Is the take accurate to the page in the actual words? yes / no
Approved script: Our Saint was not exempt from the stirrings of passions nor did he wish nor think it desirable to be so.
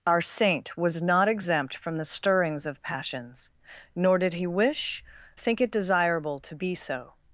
no